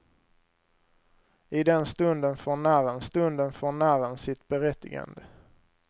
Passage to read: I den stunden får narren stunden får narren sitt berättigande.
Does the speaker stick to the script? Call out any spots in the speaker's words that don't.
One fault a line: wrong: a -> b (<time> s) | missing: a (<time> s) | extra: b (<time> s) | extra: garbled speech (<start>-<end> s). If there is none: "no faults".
no faults